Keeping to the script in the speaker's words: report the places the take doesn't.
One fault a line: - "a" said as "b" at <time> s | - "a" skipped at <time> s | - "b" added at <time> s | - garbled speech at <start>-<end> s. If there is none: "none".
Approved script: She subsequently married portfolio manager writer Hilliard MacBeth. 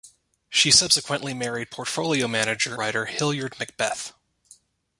none